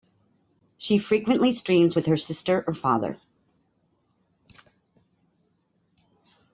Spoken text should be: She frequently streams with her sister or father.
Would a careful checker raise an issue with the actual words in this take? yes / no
no